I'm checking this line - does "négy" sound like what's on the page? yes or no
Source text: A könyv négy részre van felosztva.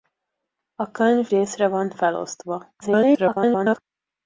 no